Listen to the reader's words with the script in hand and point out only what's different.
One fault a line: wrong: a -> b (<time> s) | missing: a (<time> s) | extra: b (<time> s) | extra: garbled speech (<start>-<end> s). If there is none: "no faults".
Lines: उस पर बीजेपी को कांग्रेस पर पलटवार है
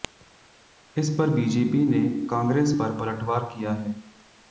wrong: उस -> इस (0.9 s)
wrong: को -> ने (1.9 s)
extra: किया (3.5 s)